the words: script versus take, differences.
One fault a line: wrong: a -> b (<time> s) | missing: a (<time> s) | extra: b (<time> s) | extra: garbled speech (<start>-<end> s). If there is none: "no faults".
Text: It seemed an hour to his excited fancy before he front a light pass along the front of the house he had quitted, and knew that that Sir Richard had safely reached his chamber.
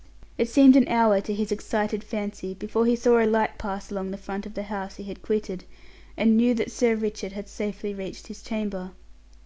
wrong: front -> saw (3.0 s)
missing: that (6.7 s)